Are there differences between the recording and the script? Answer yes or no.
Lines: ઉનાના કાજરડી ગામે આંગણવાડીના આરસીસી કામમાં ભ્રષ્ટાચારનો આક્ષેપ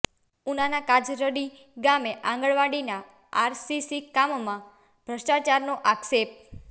no